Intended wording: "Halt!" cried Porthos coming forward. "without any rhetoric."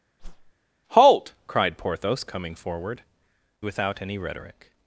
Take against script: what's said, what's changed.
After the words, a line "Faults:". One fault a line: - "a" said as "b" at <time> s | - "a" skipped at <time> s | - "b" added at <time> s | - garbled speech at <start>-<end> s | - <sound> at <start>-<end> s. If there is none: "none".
"Halt!" cried Porthos coming forward. "without any rhetoric."
Faults:
- whoosh at 0.2-0.5 s